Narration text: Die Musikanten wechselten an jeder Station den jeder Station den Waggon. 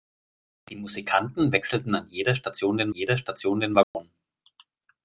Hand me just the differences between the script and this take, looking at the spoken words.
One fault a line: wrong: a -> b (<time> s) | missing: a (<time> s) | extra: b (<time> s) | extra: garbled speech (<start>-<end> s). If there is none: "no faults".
no faults